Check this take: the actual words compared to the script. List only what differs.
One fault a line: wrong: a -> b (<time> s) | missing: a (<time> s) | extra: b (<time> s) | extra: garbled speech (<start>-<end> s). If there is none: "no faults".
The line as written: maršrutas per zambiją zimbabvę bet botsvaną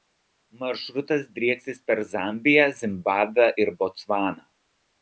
extra: drieksis (1.4 s)
wrong: bet -> ir (3.7 s)